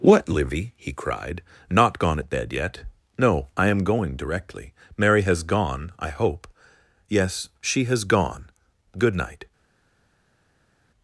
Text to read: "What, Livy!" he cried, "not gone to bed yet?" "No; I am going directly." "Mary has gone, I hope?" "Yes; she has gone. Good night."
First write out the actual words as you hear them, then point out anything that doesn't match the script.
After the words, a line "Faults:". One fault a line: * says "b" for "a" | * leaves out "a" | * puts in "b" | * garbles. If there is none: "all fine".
"What, Livy!" he cried, "not gone at bed yet?" "No; I am going directly." "Mary has gone, I hope?" "Yes; she has gone. Good night."
Faults:
* says "at" for "to"